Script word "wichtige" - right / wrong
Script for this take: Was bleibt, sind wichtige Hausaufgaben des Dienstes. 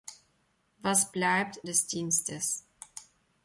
wrong